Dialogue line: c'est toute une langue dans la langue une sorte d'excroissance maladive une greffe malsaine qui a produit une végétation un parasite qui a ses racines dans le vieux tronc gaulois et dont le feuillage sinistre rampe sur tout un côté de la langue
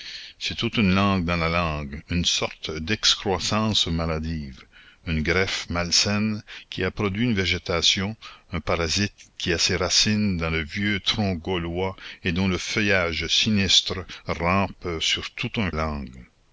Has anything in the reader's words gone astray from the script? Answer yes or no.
yes